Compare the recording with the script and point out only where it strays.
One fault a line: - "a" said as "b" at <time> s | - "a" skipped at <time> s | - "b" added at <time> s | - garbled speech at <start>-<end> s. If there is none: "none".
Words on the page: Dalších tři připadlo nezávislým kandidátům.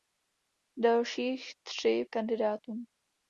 - "připadlo nezávislým" skipped at 2.0 s